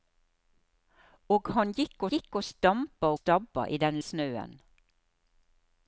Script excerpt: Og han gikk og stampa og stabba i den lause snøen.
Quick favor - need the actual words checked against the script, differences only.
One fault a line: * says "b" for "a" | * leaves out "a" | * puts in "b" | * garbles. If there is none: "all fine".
* puts in "gikk"
* leaves out "og"
* leaves out "lause"